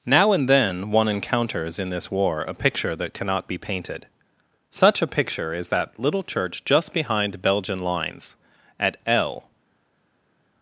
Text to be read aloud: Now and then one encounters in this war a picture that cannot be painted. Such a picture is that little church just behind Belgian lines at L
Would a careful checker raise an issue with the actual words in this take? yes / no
no